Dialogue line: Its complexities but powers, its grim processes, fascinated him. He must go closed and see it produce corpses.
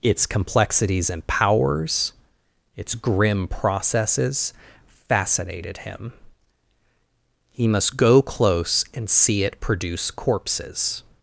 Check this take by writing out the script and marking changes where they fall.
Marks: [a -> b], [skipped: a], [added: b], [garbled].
Its complexities [but -> and] powers, its grim processes, fascinated him. He must go [closed -> close] and see it produce corpses.